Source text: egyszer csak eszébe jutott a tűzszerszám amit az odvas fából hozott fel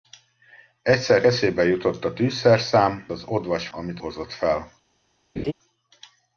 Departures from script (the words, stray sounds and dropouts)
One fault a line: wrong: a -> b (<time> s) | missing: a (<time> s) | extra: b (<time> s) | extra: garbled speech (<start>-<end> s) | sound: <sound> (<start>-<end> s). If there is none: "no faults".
missing: csak (1.2 s)
missing: amit (3.1 s)
wrong: fából -> amit (3.7 s)
sound: laugh (5.4-5.5 s)